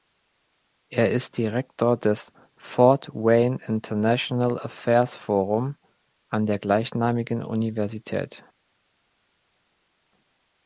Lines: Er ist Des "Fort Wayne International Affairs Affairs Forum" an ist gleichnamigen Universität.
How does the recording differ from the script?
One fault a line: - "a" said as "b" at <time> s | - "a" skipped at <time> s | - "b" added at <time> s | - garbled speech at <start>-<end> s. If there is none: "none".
- "Direktor" added at 1.4 s
- "Affairs" skipped at 5.2 s
- "ist" said as "der" at 6.5 s